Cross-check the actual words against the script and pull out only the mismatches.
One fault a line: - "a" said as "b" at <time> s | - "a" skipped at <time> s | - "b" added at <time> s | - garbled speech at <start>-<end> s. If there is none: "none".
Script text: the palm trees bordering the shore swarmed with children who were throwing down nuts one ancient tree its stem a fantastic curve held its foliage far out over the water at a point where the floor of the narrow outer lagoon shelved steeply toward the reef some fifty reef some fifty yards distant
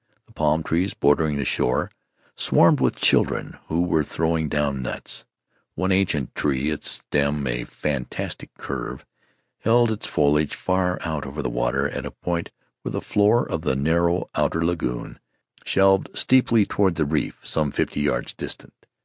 - "reef some fifty" skipped at 18.0 s